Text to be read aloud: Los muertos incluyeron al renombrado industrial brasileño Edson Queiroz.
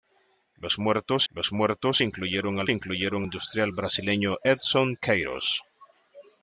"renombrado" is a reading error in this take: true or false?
true